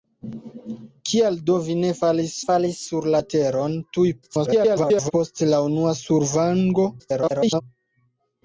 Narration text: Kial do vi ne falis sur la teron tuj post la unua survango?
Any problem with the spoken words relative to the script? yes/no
yes